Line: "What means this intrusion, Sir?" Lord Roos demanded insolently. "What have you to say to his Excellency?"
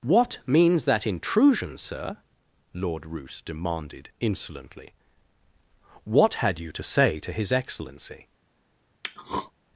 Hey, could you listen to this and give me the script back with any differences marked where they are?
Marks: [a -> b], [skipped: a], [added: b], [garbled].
"What means [this -> that] intrusion, Sir?" Lord Roos demanded insolently. "What [have -> had] you to say to his Excellency?"